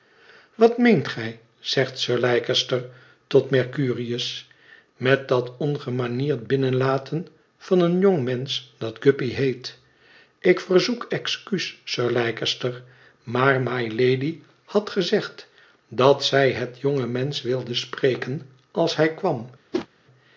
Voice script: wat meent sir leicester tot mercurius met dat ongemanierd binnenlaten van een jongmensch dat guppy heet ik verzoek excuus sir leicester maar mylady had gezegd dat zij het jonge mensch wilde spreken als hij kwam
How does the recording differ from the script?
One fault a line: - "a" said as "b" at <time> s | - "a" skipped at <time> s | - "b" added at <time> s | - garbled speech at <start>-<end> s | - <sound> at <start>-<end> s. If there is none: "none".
- "gij zegt" added at 1.1 s
- whoosh at 19.7-19.9 s